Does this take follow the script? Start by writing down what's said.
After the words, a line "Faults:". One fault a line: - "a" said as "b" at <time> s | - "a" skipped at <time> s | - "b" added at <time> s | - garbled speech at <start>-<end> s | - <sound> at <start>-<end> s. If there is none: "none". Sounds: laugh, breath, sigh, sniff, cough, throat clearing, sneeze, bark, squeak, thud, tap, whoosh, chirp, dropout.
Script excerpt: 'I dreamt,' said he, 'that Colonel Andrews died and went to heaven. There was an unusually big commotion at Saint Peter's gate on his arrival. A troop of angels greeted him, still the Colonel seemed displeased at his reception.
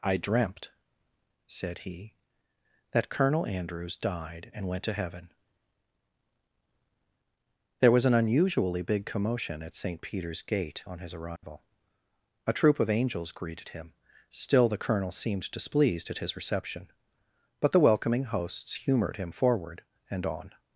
'I dreamt,' said he, 'that Colonel Andrews died and went to heaven. There was an unusually big commotion at Saint Peter's gate on his arrival. A troop of angels greeted him, still the Colonel seemed displeased at his reception. But the welcoming hosts humored him forward, and on
Faults:
- dropout at 11.4-11.4 s
- "But the welcoming hosts humored him forward and on" added at 17.6 s